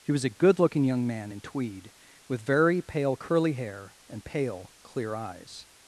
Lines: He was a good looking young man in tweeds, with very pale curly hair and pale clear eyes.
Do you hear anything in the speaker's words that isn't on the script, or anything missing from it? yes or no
yes